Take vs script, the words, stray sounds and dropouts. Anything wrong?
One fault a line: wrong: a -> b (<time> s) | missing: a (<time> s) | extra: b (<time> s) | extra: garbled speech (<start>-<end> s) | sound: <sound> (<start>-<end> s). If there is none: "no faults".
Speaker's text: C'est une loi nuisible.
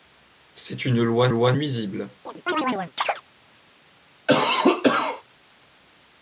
extra: loi (1.3 s)
sound: chirp (2.3-3.2 s)
sound: cough (4.3-5.2 s)